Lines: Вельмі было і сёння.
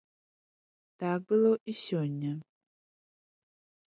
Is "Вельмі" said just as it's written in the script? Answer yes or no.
no